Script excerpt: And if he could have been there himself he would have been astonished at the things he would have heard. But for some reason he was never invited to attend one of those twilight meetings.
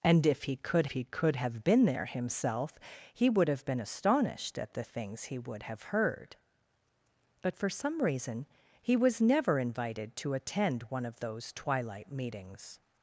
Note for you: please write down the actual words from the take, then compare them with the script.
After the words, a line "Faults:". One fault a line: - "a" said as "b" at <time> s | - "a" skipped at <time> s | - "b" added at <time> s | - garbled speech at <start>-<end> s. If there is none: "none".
And if he could he could have been there himself he would have been astonished at the things he would have heard. But for some reason he was never invited to attend one of those twilight meetings.
Faults:
- "he could" added at 0.9 s